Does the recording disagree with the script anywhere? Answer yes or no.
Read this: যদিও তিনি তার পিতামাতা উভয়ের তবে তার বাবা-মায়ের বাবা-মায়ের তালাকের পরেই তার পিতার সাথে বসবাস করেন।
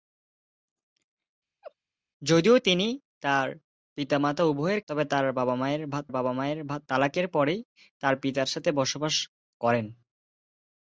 no